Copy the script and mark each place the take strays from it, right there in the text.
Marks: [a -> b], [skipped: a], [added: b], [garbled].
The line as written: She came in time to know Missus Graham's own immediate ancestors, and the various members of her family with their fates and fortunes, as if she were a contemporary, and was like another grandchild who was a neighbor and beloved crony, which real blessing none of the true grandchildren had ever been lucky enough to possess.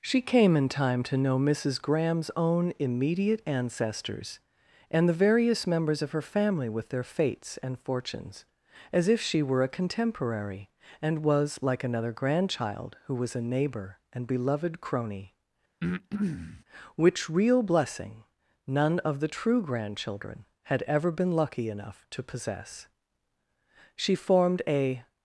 She came in time to know Missus Graham's own immediate ancestors, and the various members of her family with their fates and fortunes, as if she were a contemporary, and was like another grandchild who was a neighbor and beloved crony, which real blessing none of the true grandchildren had ever been lucky enough to possess. [added: She formed a]